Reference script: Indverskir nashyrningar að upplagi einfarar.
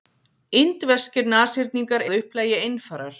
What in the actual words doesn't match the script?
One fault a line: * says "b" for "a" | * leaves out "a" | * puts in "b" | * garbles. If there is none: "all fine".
all fine